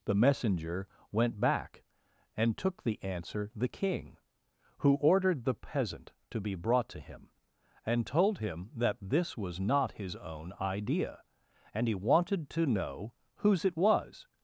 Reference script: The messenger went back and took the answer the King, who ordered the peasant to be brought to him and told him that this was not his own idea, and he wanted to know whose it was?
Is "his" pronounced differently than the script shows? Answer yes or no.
no